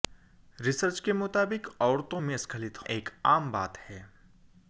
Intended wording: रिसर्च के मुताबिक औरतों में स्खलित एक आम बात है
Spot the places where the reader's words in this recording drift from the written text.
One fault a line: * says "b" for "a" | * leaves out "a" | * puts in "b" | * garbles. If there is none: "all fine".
all fine